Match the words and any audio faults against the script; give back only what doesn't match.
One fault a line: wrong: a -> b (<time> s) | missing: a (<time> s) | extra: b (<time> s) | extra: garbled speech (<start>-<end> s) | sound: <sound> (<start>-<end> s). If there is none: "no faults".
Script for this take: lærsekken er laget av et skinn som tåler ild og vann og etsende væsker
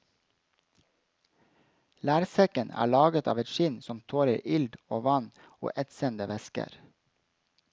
no faults